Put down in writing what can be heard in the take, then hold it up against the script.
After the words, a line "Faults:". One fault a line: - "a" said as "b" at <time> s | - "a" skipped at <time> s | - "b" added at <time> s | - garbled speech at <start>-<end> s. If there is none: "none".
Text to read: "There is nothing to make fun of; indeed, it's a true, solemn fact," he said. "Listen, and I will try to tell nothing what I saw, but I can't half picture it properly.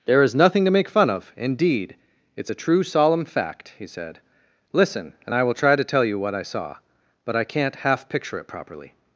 "There is nothing to make fun of; indeed, it's a true, solemn fact," he said. "Listen, and I will try to tell you what I saw, but I can't half picture it properly.
Faults:
- "nothing" said as "you" at 6.0 s